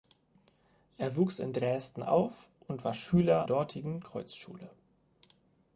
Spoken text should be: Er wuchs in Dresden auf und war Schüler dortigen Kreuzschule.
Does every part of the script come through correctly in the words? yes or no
yes